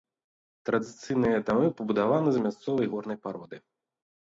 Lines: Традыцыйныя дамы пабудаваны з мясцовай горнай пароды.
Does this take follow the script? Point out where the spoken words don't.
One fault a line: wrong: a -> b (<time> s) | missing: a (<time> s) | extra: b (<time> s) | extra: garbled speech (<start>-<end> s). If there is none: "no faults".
no faults